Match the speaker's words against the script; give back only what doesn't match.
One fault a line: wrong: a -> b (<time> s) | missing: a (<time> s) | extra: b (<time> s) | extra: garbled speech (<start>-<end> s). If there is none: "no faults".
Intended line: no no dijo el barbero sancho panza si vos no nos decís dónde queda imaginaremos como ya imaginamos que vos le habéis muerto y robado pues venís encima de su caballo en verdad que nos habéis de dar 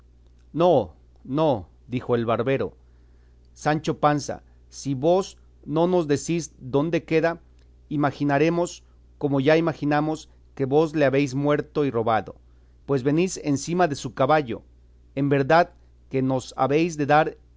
no faults